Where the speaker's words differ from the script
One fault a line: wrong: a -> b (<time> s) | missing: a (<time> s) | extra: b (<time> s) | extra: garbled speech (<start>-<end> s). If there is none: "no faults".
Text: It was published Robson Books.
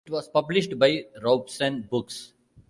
extra: by (0.8 s)